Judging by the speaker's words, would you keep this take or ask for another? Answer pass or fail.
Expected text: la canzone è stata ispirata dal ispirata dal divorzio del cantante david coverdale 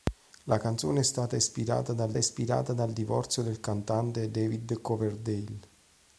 pass